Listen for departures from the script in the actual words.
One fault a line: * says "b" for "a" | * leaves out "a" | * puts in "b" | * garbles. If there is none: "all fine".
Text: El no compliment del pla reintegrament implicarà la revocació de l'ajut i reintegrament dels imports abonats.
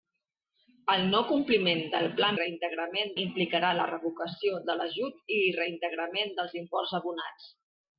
all fine